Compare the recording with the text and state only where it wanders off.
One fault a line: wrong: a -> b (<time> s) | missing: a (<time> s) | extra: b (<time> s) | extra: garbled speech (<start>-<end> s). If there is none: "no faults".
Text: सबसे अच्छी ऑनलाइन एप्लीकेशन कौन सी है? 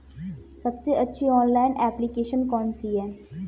no faults